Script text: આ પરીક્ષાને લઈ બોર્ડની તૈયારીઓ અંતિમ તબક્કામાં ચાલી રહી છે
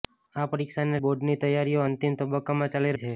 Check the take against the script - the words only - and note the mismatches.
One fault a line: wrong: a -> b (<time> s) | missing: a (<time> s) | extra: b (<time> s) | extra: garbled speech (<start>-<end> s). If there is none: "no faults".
missing: લઈ (1.0 s)
missing: રહી (3.0 s)